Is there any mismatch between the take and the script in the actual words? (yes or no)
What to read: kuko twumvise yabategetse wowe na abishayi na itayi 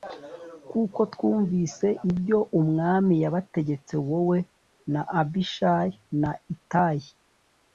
yes